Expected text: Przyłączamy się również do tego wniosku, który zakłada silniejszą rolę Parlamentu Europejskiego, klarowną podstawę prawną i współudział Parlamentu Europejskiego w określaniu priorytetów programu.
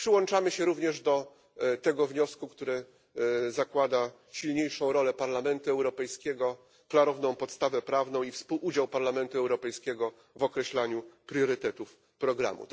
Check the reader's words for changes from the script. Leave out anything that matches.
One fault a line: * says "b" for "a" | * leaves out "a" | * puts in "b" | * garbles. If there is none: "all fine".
all fine